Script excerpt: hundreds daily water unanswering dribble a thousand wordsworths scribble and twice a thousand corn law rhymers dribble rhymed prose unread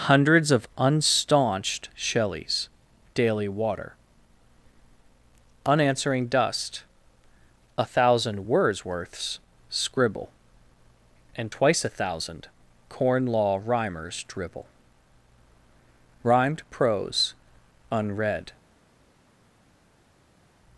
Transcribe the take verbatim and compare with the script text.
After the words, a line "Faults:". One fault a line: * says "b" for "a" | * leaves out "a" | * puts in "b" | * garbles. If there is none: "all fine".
hundreds of unstaunched shelleys daily water unanswering dust a thousand wordsworths scribble and twice a thousand corn law rhymers dribble rhymed prose unread
Faults:
* puts in "of unstaunched shelleys"
* says "dust" for "dribble"